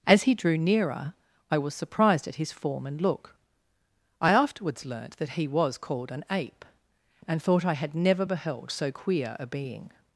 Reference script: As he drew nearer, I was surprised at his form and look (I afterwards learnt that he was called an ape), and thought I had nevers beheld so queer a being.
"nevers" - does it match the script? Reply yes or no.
no